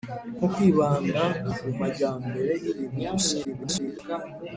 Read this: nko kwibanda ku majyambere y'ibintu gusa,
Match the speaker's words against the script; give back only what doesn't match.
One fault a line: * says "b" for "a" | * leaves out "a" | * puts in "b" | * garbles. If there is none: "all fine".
* garbles